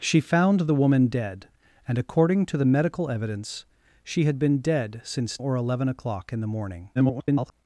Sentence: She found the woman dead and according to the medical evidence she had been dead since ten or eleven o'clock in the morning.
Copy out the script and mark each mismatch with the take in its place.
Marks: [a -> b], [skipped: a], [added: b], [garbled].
She found the woman dead and according to the medical evidence she had been dead since [skipped: ten] or eleven o'clock in the morning. [garbled]